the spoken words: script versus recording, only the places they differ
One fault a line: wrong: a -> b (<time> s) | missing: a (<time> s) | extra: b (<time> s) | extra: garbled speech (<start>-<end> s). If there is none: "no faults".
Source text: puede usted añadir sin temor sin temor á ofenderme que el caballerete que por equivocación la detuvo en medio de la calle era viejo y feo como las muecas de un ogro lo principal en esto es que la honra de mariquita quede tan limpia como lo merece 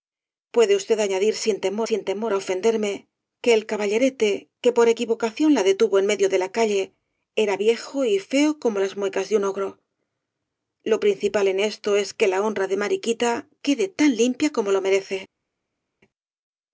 no faults